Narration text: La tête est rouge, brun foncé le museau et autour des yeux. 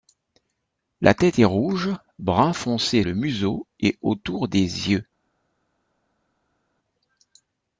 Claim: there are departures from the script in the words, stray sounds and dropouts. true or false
false